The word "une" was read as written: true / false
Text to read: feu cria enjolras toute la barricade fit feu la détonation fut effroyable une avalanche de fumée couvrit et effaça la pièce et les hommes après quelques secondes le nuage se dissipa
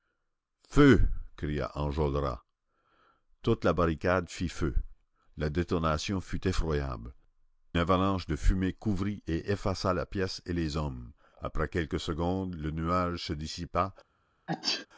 false